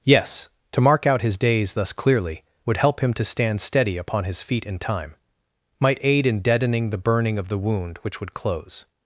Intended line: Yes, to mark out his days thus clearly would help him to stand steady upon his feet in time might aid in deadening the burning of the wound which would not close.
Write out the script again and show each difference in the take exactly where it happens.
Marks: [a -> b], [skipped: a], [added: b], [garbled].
Yes, to mark out his days thus clearly would help him to stand steady upon his feet in time might aid in deadening the burning of the wound which would [skipped: not] close.